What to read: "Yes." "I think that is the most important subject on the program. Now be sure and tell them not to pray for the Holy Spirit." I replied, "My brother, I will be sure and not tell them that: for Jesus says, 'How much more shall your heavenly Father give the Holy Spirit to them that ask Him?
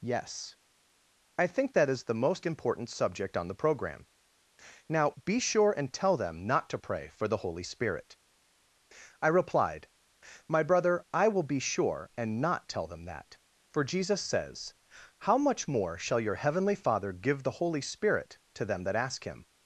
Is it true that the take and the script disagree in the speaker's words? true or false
false